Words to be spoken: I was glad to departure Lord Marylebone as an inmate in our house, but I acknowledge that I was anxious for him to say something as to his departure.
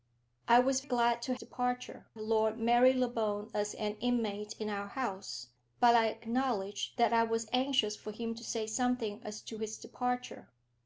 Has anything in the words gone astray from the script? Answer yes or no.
no